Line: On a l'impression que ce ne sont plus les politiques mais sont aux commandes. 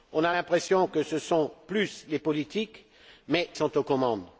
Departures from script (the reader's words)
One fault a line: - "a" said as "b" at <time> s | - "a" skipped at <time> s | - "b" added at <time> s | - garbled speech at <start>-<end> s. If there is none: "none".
none